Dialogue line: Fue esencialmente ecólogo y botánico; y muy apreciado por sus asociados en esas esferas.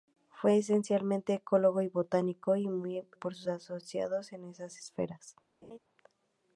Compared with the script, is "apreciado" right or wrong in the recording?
wrong